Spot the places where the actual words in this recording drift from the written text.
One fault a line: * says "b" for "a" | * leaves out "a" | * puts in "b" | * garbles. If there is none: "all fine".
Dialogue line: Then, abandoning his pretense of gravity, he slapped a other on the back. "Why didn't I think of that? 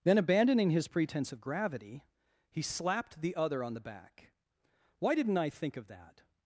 * says "the" for "a"